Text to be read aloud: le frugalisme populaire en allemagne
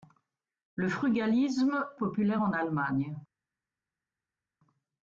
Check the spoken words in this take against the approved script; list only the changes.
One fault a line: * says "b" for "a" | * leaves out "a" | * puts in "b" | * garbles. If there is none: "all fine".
all fine